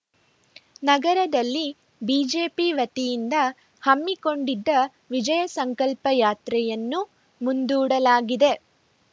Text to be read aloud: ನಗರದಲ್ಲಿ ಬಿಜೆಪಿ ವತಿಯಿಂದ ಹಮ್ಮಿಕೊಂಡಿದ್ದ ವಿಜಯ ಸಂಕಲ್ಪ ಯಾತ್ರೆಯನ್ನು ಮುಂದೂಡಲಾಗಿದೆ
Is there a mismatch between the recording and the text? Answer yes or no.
no